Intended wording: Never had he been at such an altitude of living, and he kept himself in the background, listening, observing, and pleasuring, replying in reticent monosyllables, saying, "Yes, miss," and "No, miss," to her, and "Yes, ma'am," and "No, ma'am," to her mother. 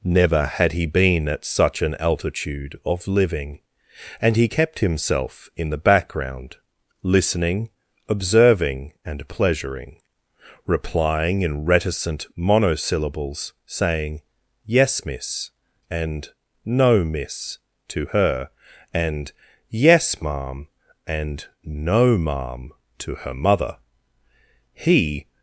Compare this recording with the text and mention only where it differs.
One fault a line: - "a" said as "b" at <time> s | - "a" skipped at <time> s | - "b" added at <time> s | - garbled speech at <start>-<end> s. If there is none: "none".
- "He" added at 24.7 s